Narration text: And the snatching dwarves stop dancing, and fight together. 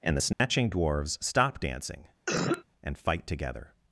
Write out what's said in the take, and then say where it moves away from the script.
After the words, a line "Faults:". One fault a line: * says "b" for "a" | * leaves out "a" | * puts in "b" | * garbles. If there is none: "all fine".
And the snatching dwarves stop dancing, and fight together.
Faults:
all fine